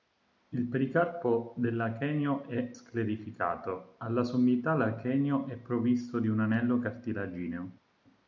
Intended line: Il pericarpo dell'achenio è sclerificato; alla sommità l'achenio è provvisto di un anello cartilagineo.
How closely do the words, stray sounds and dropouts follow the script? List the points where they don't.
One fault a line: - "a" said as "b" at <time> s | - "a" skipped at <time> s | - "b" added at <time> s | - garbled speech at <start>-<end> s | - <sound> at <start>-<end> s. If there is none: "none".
none